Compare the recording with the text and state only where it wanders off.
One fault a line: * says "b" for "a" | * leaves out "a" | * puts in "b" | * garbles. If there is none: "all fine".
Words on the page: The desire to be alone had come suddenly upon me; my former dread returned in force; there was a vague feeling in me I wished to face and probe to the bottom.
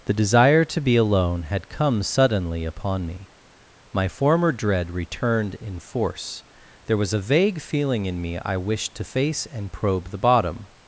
* leaves out "to"